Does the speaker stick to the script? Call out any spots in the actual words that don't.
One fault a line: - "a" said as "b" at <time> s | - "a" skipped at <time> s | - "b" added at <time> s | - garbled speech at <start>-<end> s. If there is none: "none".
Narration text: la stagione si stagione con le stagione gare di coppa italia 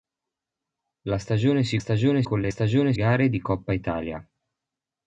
none